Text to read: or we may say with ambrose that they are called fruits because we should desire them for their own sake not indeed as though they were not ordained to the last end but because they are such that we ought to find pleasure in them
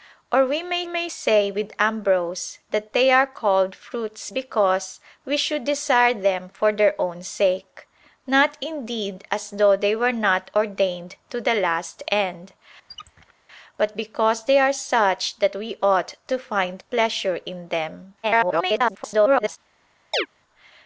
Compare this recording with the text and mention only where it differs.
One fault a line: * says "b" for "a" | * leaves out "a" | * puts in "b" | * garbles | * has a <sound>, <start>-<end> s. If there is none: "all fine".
* puts in "may"
* has a squeak, 12.9-13.3 s
* garbles
* has a chirp, 20.1-20.3 s